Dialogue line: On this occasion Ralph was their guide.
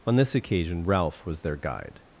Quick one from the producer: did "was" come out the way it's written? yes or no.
yes